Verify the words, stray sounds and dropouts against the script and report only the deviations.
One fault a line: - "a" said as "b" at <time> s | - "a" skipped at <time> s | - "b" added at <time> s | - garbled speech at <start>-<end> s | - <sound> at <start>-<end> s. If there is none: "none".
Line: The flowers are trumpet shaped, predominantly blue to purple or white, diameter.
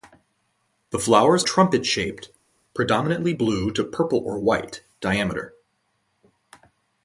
- "are" skipped at 1.4 s